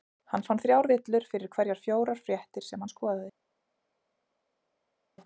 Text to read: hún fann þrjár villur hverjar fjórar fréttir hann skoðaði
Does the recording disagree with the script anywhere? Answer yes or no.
yes